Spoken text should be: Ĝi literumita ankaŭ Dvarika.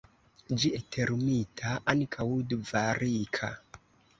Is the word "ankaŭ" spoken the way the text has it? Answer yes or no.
yes